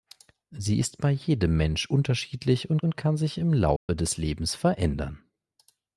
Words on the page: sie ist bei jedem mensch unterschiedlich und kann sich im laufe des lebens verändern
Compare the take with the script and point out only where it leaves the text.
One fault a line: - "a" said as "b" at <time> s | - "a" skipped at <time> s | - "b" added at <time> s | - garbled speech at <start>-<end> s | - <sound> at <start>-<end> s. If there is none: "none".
- "und" added at 2.8 s
- dropout at 3.8-3.9 s